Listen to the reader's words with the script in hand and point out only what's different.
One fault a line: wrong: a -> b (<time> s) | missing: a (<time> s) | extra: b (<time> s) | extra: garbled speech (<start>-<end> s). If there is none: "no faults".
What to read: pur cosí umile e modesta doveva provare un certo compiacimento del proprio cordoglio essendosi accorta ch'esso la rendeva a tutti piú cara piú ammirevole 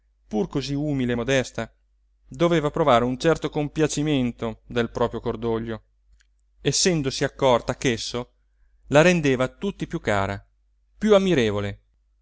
no faults